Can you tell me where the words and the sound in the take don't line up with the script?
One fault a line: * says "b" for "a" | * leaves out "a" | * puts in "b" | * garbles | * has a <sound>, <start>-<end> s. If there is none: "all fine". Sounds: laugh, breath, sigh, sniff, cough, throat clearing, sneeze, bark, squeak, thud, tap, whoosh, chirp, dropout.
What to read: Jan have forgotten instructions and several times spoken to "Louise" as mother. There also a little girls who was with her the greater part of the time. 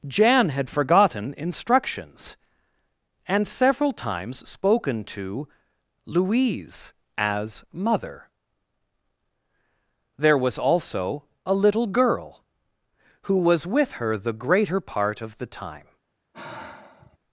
* says "had" for "have"
* puts in "was"
* says "girl" for "girls"
* has a sigh, 16.3-17.2 s